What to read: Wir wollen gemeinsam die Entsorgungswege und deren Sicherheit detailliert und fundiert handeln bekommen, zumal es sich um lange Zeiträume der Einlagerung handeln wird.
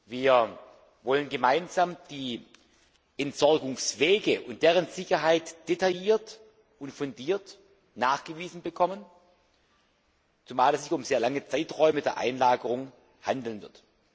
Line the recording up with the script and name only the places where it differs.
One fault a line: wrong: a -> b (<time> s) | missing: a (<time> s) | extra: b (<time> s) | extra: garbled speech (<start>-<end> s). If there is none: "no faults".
wrong: handeln -> nachgewiesen (8.0 s)
extra: sehr (11.0 s)